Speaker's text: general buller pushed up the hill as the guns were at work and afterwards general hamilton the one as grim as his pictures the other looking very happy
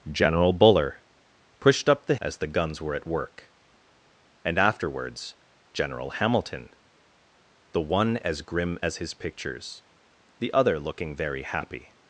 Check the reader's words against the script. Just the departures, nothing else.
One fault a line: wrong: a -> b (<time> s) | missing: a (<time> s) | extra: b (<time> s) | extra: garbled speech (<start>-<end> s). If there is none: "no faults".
missing: hill (2.1 s)